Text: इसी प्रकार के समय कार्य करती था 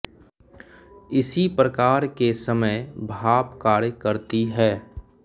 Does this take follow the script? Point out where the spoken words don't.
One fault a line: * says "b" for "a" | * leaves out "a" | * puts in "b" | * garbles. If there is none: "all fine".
* puts in "भाप"
* says "है" for "था"